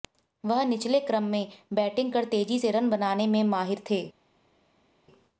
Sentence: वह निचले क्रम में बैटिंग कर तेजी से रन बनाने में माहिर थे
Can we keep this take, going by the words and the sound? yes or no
yes